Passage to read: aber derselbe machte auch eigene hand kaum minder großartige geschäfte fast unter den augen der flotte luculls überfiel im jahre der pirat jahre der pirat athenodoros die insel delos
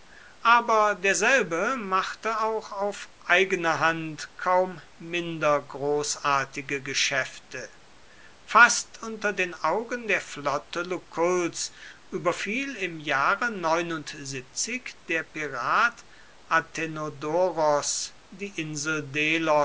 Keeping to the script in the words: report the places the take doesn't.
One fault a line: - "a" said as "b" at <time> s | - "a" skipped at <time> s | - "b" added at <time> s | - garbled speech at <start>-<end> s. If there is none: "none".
- "auf" added at 2.7 s
- "jahre der pirat" skipped at 16.0 s